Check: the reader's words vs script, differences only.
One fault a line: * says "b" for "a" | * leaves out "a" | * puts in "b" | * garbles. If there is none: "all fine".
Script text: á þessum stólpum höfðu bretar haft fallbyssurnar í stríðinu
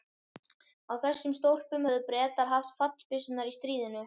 all fine